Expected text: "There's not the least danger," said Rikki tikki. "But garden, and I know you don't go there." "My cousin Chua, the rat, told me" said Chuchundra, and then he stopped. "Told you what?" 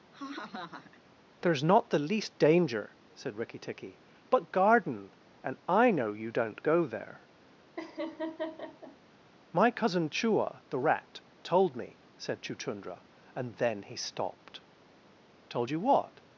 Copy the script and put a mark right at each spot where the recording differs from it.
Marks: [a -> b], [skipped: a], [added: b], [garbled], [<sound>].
[laugh] "There's not the least danger," said Rikki tikki. "But garden, and I know you don't go there." [laugh] "My cousin Chua, the rat, told me" said Chuchundra, and then he stopped. "Told you what?"